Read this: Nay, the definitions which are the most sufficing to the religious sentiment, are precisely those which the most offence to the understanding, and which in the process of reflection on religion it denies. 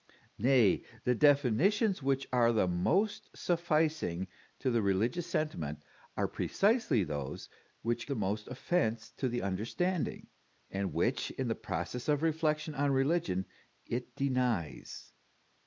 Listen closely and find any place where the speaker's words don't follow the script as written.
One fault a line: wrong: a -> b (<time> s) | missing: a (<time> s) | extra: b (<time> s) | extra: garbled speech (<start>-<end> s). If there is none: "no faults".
no faults